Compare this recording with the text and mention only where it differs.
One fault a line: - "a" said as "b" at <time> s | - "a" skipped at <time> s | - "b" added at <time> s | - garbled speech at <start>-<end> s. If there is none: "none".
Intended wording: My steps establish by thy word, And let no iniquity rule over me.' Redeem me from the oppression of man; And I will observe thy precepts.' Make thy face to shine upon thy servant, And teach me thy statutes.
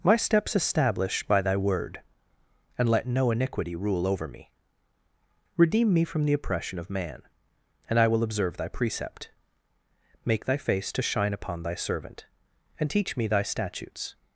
- "precepts" said as "precept" at 8.7 s